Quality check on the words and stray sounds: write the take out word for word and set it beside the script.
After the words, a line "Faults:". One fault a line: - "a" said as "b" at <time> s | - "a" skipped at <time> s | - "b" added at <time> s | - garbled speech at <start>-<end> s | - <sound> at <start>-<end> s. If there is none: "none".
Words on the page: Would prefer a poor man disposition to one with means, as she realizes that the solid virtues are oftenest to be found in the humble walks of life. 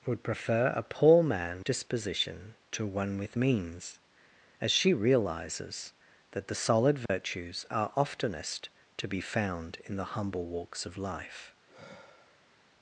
Would prefer a poor man disposition to one with means, as she realizes that the solid virtues are oftenest to be found in the humble walks of life.
Faults:
- dropout at 7.1-7.1 s
- sigh at 11.6-12.7 s